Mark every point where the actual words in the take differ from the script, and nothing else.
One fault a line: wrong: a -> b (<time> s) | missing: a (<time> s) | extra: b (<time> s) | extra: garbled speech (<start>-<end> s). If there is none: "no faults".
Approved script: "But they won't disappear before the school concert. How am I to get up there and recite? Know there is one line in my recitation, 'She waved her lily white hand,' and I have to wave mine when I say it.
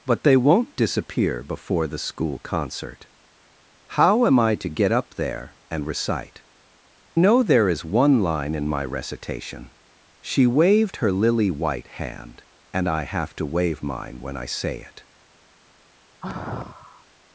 no faults